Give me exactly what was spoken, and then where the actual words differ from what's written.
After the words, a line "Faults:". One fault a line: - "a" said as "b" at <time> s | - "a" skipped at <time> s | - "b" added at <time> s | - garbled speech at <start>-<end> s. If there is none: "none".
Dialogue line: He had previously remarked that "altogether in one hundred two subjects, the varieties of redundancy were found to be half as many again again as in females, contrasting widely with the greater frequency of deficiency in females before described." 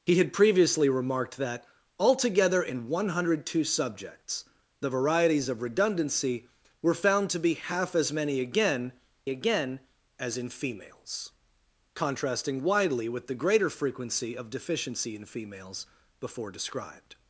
He had previously remarked that "altogether in one hundred two subjects, the varieties of redundancy were found to be half as many again again as in females, contrasting widely with the greater frequency of deficiency in females before described."
Faults:
none